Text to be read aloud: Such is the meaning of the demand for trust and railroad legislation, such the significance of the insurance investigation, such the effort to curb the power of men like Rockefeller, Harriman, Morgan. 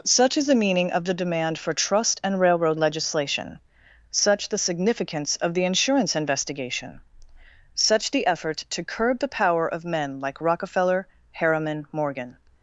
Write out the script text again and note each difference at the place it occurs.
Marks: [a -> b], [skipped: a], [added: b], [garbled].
Such is the meaning of the demand for trust and railroad legislation, such the significance of the insurance investigation, such the effort to curb the power of men like Rockefeller, Harriman, Morgan.